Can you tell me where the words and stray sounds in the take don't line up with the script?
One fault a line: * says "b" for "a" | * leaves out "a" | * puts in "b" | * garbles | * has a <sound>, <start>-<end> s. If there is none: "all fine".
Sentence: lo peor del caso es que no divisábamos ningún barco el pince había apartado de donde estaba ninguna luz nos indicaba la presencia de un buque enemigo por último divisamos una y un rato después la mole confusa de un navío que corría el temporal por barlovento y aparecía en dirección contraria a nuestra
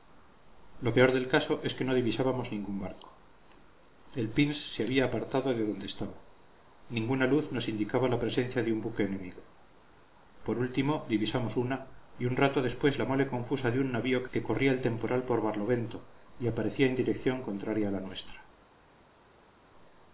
* puts in "se"
* puts in "la"